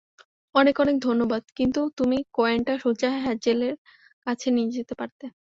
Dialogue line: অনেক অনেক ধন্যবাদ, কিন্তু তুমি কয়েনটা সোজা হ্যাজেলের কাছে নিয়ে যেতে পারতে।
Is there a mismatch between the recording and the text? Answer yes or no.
no